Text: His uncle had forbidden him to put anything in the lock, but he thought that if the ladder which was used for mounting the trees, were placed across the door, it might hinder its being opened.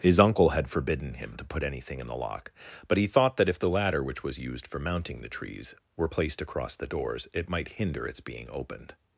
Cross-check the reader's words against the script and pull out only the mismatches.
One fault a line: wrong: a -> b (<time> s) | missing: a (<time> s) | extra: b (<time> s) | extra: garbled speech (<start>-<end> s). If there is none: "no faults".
wrong: door -> doors (6.9 s)